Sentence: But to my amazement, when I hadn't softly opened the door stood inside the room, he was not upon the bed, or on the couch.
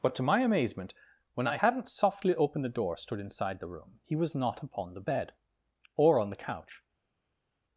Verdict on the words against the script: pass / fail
pass